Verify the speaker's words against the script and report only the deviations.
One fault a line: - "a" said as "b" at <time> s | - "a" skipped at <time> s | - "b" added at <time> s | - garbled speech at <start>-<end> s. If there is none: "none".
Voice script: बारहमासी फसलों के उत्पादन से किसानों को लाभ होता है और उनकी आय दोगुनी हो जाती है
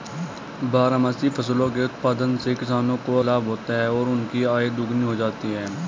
none